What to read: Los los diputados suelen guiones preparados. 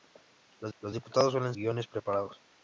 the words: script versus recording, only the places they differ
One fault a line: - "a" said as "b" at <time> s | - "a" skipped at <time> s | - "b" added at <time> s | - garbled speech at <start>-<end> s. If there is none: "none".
none